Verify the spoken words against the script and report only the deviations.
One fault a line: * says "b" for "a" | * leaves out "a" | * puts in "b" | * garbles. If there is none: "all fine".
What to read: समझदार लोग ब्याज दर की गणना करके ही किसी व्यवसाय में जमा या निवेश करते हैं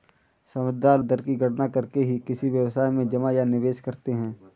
* leaves out "लोग ब्याज"